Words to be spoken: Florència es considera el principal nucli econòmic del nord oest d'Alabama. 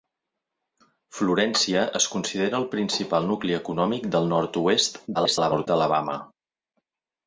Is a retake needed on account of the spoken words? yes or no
yes